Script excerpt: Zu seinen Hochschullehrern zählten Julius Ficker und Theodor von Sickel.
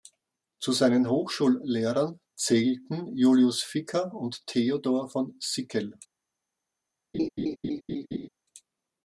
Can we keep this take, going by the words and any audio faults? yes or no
no